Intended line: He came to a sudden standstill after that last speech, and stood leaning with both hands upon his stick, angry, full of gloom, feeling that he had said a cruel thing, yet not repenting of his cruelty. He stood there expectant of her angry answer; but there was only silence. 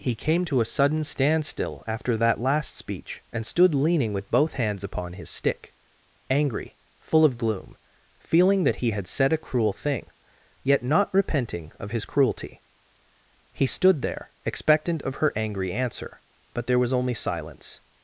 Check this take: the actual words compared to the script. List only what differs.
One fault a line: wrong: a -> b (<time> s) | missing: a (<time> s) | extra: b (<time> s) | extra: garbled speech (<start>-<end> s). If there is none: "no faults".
no faults